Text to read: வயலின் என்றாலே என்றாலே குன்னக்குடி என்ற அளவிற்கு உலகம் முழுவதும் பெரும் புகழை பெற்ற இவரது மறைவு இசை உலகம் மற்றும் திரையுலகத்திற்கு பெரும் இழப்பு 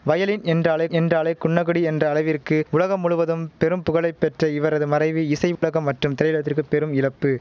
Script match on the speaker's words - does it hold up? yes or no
yes